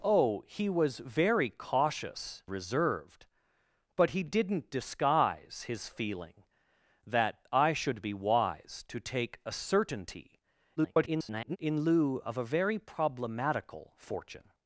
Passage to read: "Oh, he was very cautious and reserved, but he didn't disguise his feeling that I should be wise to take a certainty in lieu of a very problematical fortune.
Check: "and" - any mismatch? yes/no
yes